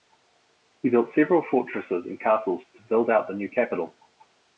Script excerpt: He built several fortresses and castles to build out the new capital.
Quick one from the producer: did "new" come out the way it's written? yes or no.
yes